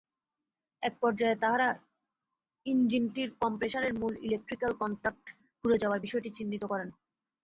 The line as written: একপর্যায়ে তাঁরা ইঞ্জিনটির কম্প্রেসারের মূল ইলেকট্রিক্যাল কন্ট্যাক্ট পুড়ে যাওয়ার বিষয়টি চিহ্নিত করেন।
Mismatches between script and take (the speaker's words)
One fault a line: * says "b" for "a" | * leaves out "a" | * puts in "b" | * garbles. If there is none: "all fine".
all fine